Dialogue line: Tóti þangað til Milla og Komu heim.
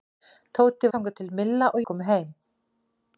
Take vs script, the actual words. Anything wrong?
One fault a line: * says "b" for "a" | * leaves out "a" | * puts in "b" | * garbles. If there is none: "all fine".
all fine